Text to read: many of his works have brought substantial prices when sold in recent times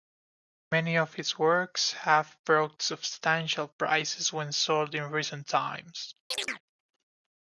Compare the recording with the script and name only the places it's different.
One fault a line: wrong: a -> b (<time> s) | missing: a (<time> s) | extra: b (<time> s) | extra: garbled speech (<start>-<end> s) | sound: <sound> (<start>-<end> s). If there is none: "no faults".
sound: chirp (6.3-6.6 s)